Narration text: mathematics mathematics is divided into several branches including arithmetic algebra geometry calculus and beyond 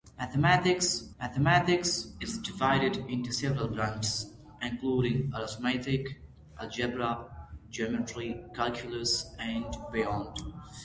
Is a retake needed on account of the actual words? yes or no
no